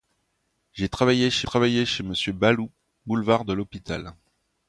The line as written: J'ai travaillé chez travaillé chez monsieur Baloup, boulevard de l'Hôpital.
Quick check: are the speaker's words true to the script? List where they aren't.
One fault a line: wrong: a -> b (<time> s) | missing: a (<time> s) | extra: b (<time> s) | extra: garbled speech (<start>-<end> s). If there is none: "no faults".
no faults